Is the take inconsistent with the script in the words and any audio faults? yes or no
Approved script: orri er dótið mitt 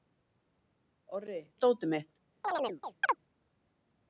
yes